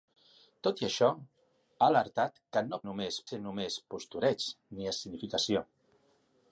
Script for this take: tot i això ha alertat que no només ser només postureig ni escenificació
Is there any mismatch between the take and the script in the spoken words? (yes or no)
no